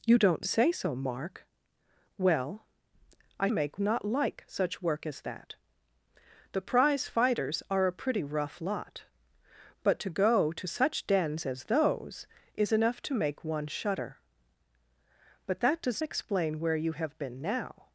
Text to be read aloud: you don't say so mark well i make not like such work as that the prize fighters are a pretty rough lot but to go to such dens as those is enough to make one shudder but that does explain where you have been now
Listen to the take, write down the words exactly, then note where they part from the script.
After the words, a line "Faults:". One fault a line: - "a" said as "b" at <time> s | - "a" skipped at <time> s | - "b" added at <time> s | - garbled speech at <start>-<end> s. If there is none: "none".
you don't say so mark well i make not like such work as that the prize fighters are a pretty rough lot but to go to such dens as those is enough to make one shudder but that does explain where you have been now
Faults:
none